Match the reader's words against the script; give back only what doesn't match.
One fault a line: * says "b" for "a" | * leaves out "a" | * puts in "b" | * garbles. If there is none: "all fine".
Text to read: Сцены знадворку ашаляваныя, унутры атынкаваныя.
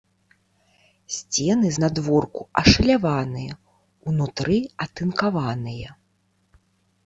all fine